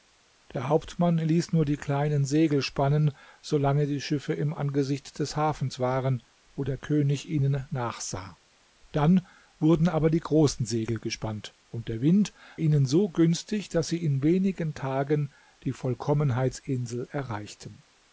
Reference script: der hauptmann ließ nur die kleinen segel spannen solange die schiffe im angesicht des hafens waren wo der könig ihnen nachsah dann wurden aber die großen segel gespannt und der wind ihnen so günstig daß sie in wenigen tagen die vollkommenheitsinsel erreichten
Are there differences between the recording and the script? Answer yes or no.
no